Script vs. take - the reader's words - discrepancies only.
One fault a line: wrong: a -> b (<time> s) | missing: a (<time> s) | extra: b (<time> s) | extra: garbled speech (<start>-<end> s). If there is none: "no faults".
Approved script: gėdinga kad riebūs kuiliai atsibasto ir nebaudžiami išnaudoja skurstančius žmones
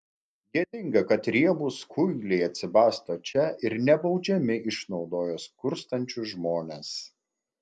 extra: čia (3.3 s)